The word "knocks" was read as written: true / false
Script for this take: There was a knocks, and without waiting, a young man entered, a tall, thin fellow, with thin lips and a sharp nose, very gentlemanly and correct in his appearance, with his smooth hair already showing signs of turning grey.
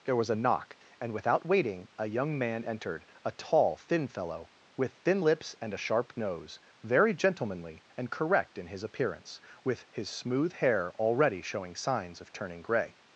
false